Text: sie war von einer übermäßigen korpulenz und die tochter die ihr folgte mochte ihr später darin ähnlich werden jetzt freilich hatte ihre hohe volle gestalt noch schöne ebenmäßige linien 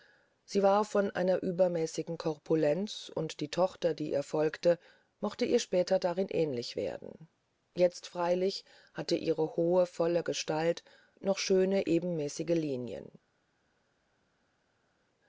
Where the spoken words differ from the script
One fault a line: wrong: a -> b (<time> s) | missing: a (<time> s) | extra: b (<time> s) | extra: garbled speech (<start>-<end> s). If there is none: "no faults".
no faults